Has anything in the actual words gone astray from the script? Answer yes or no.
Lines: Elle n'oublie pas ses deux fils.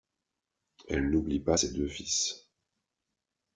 no